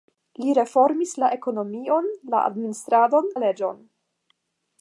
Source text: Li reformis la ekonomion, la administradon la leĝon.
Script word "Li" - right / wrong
right